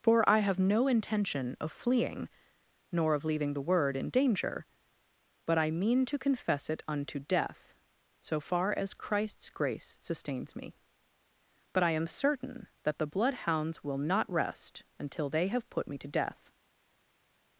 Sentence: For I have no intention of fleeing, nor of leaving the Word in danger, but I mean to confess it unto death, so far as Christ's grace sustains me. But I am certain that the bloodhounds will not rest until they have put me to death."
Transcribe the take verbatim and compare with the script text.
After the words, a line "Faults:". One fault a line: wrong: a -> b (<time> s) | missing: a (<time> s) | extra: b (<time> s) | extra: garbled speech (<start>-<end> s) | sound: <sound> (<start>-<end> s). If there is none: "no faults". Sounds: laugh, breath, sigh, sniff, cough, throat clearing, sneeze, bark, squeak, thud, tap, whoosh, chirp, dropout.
For I have no intention of fleeing, nor of leaving the Word in danger, but I mean to confess it unto death, so far as Christ's grace sustains me. But I am certain that the bloodhounds will not rest until they have put me to death."
Faults:
no faults